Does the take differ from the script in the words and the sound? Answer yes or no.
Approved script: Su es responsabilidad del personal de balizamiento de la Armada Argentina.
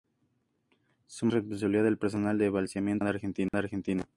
yes